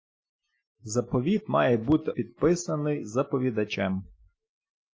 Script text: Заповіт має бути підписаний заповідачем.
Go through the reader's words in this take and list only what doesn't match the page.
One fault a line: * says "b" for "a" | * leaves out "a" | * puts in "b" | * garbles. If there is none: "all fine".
all fine